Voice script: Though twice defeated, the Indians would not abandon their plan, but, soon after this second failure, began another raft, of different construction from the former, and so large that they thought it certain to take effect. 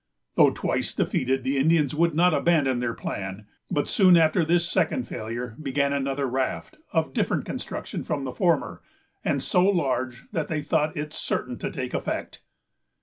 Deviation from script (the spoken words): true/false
false